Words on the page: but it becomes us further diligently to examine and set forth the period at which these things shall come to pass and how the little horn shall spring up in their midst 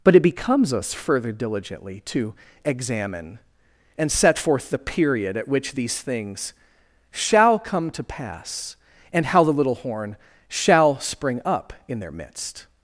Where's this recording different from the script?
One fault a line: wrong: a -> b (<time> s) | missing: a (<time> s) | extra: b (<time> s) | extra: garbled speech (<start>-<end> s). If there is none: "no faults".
no faults